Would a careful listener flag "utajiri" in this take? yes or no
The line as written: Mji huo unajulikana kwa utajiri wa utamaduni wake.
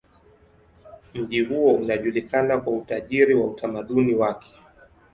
no